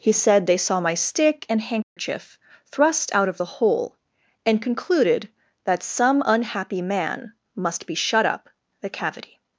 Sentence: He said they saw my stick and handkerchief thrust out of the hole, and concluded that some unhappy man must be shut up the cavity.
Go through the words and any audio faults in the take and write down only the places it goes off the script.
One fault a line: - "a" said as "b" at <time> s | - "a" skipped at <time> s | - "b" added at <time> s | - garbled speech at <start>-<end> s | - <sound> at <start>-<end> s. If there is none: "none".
- dropout at 1.8-2.0 s